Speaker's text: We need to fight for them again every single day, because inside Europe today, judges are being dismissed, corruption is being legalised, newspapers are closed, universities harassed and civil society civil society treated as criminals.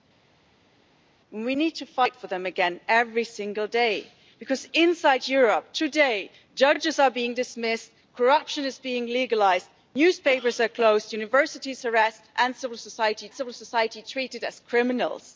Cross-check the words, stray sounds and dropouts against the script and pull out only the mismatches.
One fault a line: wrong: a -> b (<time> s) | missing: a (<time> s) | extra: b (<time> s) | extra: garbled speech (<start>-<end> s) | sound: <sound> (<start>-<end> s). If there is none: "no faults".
no faults